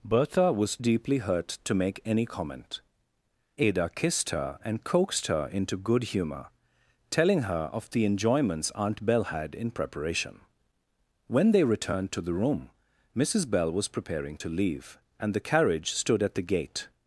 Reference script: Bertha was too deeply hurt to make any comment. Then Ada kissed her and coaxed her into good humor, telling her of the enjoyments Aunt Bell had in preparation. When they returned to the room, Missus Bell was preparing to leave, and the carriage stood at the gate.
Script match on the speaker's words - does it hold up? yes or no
no